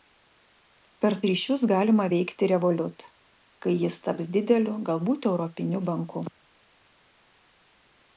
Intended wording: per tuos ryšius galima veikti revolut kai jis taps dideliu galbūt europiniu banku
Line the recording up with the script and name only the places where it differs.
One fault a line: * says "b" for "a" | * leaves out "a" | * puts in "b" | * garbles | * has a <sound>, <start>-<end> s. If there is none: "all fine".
* leaves out "tuos"